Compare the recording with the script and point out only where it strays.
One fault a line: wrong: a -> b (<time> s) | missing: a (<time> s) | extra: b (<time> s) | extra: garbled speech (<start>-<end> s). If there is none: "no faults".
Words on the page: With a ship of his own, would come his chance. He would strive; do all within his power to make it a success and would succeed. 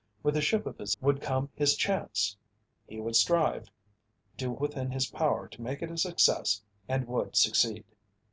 missing: own (0.9 s)
missing: all (4.6 s)